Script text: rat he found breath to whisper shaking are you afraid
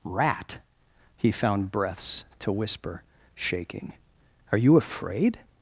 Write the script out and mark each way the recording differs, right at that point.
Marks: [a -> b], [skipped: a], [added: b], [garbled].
rat he found [breath -> breaths] to whisper shaking are you afraid